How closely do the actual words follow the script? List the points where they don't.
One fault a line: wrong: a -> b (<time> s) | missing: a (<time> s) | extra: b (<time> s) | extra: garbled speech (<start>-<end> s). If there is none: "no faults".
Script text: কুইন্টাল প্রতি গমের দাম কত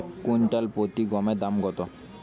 no faults